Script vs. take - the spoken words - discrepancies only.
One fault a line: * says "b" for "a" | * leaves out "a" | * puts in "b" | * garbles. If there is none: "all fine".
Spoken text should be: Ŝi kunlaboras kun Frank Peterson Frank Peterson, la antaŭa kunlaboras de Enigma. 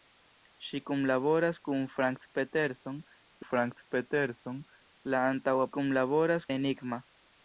all fine